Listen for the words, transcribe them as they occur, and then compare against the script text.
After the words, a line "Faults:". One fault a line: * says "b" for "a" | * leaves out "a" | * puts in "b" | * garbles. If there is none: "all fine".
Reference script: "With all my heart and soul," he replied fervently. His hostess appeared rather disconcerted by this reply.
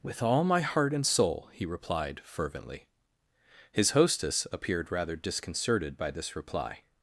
"With all my heart and soul," he replied fervently. His hostess appeared rather disconcerted by this reply.
Faults:
all fine